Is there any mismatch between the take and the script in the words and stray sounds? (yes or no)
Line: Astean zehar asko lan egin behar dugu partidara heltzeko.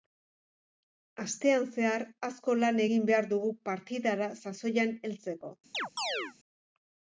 yes